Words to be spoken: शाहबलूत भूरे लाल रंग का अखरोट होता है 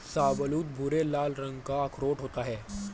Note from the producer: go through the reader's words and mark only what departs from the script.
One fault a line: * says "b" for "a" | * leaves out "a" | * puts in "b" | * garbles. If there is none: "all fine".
all fine